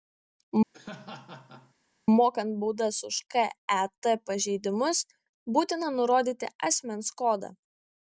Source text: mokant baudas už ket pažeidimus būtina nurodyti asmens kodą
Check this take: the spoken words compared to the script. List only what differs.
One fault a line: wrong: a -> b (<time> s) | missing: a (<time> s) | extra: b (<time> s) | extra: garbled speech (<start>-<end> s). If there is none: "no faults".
no faults